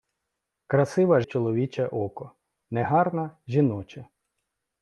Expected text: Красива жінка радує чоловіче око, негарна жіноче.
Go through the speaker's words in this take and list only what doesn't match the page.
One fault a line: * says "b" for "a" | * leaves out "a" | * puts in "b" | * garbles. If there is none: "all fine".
* leaves out "жінка радує"